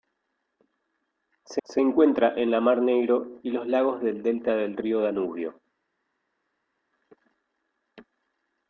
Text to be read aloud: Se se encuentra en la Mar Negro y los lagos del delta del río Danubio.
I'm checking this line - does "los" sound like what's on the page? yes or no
yes